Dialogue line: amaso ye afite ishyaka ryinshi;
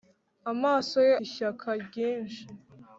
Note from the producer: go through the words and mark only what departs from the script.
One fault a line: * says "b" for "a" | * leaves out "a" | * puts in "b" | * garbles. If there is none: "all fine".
* leaves out "afite"